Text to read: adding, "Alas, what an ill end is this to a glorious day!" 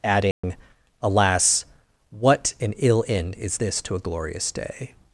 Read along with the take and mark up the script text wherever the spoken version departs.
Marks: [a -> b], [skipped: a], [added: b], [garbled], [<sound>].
adding, [dropout] "Alas, what an ill end is this to a glorious day!"